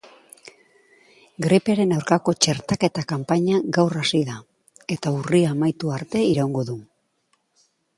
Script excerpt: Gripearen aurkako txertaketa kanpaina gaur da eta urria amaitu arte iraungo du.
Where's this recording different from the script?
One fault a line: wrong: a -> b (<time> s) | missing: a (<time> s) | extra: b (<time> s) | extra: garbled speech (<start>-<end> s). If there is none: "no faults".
extra: hasi (4.0 s)